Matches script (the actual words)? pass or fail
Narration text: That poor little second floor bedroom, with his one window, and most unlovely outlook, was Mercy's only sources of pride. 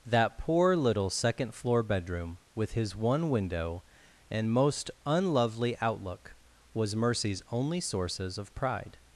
pass